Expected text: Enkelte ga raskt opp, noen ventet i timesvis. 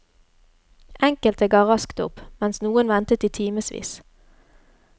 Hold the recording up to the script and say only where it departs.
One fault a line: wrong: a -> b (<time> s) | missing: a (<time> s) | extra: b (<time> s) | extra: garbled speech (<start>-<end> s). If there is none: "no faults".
extra: mens (2.4 s)